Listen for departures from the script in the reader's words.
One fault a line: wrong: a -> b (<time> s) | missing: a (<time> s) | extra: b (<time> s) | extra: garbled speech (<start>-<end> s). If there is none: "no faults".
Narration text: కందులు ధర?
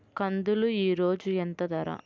extra: ఈరోజు ఎంత (0.7 s)